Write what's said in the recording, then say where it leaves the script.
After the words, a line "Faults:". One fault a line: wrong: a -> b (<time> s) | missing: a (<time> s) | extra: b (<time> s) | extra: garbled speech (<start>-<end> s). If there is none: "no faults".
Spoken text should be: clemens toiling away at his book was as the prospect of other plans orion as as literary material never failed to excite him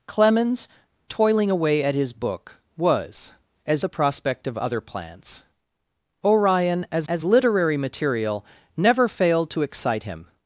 clemens toiling away at his book was as the prospect of other plans orion as as literary material never failed to excite him
Faults:
no faults